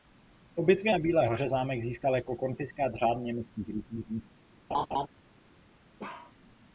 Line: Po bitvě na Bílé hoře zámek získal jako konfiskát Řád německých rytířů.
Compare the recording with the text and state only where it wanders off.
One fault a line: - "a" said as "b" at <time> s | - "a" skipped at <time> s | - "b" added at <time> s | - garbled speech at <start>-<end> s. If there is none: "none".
none